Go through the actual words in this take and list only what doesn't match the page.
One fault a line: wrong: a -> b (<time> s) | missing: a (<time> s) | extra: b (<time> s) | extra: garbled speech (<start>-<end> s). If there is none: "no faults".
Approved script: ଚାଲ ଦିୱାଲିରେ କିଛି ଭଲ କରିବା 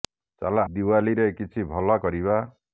no faults